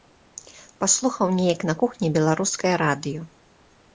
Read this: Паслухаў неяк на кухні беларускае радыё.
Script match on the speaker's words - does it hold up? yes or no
yes